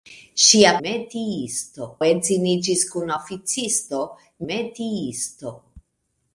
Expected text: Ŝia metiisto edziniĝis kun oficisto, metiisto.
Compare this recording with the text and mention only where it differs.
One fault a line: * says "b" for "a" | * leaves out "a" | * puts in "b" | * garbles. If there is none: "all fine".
all fine